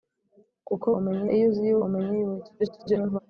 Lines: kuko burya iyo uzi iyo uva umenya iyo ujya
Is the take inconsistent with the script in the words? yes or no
yes